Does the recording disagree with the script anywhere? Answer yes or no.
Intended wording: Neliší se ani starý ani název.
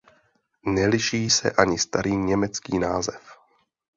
yes